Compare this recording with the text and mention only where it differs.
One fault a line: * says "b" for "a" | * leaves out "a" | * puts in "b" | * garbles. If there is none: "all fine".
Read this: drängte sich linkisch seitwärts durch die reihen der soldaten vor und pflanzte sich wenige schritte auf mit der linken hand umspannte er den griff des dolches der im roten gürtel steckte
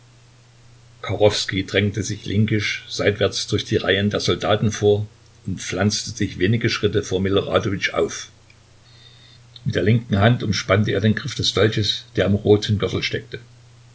* puts in "vor miloradowitsch"